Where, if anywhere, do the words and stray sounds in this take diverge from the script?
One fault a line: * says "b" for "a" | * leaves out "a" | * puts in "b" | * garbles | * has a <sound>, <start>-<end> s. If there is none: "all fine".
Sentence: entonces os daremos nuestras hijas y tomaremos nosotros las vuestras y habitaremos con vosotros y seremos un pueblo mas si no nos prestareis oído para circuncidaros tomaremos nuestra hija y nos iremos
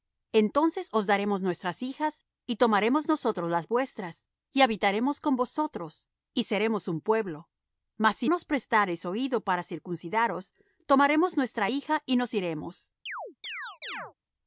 * leaves out "no"
* has a chirp, 13.1-14.1 s